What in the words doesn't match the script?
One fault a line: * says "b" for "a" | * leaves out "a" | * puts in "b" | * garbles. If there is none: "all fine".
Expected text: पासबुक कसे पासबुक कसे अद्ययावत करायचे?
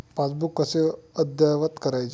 * leaves out "पासबुक कसे"